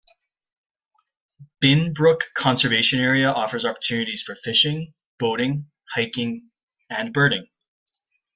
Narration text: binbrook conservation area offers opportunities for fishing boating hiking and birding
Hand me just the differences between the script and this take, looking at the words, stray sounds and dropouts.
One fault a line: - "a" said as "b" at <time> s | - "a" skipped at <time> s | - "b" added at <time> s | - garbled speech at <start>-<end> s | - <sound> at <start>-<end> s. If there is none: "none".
none